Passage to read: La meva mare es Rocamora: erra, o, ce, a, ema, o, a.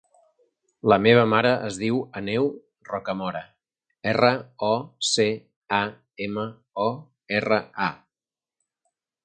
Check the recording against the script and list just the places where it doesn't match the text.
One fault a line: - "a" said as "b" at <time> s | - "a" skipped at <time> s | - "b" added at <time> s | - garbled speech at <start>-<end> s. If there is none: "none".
- "diu Aneu" added at 1.8 s
- "erra" added at 7.4 s